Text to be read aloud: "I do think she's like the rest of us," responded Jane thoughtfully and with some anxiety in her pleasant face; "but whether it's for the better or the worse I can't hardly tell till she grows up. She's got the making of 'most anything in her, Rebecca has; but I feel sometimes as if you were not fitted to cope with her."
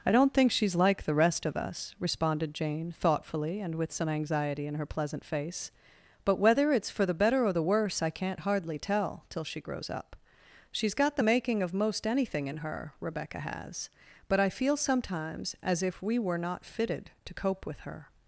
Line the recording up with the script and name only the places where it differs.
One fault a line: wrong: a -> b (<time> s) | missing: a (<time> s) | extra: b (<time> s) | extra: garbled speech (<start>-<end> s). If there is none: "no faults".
wrong: do -> don't (0.1 s)
wrong: you -> we (16.0 s)